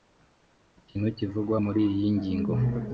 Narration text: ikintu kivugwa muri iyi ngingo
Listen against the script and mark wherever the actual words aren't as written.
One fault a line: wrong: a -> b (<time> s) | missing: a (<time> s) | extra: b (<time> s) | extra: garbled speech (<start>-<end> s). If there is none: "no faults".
no faults